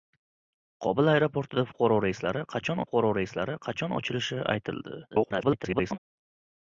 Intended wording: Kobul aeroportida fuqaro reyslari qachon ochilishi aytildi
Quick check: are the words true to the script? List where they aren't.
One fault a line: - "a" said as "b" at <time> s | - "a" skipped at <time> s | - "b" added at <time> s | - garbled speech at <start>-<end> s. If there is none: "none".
- "fuqaro reyslari qachon" added at 2.8 s
- garbled speech at 5.1-6.0 s